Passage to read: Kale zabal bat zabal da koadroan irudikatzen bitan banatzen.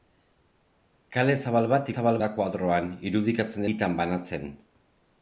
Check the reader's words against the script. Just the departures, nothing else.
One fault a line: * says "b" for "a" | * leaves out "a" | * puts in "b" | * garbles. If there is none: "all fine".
all fine